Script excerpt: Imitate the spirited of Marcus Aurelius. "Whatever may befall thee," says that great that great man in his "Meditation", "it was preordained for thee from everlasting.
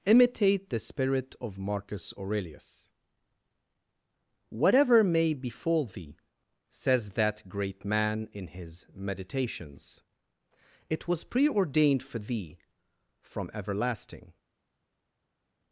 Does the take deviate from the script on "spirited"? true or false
true